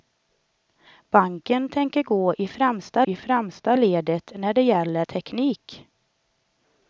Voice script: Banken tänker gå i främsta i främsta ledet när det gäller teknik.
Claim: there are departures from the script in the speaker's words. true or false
false